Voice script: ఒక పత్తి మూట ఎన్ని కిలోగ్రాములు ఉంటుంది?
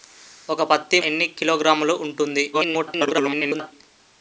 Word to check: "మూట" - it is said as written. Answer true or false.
false